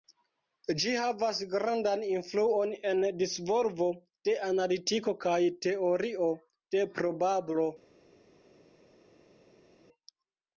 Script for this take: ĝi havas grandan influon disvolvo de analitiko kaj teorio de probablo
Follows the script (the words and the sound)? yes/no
no